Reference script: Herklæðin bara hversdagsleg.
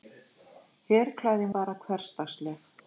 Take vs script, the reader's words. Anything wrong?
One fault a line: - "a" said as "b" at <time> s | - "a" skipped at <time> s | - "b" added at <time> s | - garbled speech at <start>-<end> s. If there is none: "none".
none